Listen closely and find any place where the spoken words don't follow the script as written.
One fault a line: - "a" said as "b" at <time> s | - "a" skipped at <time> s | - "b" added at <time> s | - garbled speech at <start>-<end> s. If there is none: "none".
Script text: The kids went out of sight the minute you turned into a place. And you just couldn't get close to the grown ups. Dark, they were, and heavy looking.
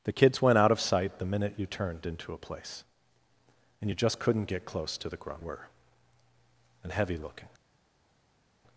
- "ups Dark they" skipped at 5.4 s